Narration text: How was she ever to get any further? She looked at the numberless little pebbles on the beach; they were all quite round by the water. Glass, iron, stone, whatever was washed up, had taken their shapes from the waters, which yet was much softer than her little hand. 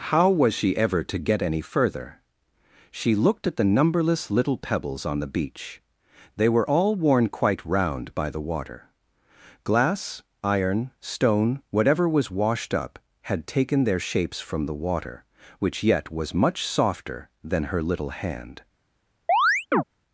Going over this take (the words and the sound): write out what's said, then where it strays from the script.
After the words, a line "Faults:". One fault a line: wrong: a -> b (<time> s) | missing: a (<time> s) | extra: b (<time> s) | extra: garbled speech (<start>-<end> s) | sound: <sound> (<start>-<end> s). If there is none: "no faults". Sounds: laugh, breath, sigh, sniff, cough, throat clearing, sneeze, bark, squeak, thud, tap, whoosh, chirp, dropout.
How was she ever to get any further? She looked at the numberless little pebbles on the beach; they were all worn quite round by the water. Glass, iron, stone, whatever was washed up, had taken their shapes from the water, which yet was much softer than her little hand.
Faults:
extra: worn (7.0 s)
wrong: waters -> water (14.7 s)
sound: chirp (19.3-19.8 s)